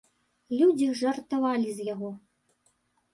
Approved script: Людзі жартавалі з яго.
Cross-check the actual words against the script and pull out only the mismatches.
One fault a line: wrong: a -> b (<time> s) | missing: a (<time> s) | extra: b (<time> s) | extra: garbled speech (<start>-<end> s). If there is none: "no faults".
no faults